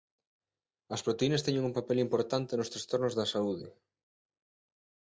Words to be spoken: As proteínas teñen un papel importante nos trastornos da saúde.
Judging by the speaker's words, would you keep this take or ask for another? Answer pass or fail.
pass